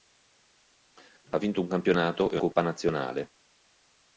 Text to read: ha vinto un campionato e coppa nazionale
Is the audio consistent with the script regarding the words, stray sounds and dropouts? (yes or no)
yes